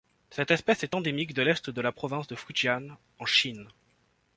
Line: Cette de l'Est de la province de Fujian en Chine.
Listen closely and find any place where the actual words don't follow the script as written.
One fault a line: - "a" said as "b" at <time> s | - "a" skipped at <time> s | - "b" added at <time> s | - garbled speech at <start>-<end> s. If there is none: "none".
- "espèce est endémique" added at 0.5 s